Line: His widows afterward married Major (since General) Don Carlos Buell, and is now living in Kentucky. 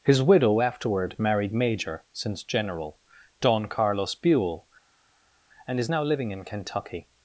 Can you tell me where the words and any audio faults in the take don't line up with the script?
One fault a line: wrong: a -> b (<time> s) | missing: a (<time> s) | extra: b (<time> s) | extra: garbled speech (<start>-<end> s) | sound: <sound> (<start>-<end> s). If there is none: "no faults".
wrong: widows -> widow (0.2 s)